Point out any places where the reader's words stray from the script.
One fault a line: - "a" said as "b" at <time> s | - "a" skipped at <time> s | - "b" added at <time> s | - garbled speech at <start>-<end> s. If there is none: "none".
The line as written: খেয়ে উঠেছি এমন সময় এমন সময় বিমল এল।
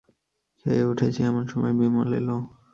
- "এমন সময়" skipped at 1.7 s